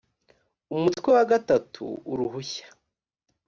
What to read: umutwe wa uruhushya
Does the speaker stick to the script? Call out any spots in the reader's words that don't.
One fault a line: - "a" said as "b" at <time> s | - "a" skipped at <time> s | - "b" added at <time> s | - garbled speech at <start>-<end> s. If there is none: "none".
- "gatatu" added at 1.3 s